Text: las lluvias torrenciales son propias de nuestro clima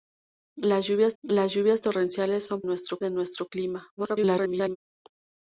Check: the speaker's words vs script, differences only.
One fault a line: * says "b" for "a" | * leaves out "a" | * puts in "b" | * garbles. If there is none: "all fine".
* puts in "las lluvias"
* says "nuestro" for "propias"
* garbles